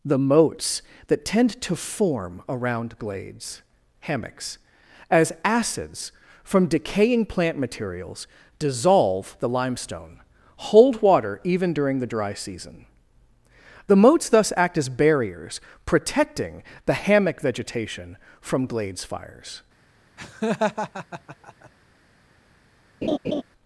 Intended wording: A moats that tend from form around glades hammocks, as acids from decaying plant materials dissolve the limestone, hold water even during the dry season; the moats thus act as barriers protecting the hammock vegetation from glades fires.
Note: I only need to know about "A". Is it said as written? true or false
false